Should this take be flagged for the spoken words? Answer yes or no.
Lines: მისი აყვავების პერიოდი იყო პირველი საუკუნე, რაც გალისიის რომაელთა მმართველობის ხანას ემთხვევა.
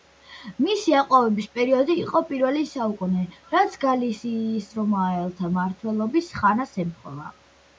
no